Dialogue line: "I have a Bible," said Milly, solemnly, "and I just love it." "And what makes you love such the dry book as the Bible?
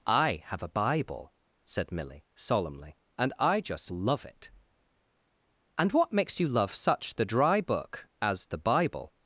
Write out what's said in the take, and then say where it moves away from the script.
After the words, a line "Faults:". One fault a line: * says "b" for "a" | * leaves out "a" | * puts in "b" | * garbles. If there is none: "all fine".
"I have a Bible," said Milly, solemnly, "and I just love it." "And what makes you love such the dry book as the Bible?
Faults:
all fine